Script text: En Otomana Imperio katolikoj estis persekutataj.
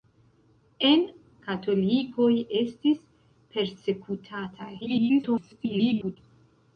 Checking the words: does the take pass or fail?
fail